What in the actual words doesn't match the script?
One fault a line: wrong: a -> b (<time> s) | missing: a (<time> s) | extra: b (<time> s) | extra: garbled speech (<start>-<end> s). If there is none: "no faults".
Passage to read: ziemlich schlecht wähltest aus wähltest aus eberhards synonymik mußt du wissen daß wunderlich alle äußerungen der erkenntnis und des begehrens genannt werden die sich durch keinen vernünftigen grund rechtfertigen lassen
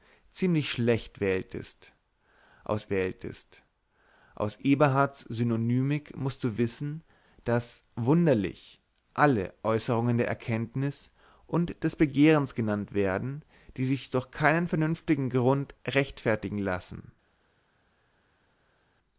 no faults